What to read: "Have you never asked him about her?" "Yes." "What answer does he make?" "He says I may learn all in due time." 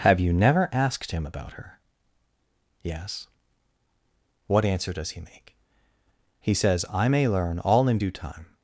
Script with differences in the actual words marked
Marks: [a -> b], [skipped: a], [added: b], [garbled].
"Have you never asked him about her?" "Yes." "What answer does he make?" "He says I may learn all in due time."